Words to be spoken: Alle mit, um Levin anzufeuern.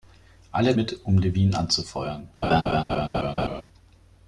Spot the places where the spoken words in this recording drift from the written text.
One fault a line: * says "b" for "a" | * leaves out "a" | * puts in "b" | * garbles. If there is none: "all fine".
all fine